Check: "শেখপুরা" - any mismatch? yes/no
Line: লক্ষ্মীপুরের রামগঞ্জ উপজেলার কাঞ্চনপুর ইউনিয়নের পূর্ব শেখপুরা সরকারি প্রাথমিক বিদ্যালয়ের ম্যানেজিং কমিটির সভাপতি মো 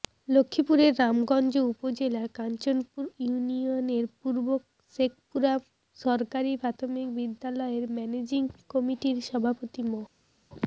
no